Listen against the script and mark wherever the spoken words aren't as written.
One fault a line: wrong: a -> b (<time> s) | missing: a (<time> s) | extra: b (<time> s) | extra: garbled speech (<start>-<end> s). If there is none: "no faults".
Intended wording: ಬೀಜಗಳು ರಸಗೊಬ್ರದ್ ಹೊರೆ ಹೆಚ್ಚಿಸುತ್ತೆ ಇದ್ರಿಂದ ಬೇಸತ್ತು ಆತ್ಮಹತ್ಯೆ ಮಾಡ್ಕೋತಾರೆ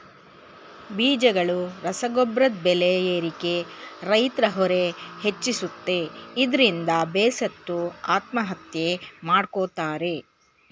extra: ಬೆಲೆ ಏರಿಕೆ ರೈತ್ರ (2.6 s)